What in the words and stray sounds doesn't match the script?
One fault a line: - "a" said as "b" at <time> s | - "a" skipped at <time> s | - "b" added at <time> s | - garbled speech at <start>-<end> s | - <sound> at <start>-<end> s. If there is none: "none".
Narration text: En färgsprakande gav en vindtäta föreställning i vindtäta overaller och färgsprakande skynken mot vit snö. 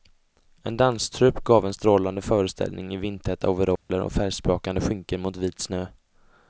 - "färgsprakande" said as "danstrupp" at 0.8 s
- "vindtäta" said as "strålande" at 1.7 s
- dropout at 3.8-3.9 s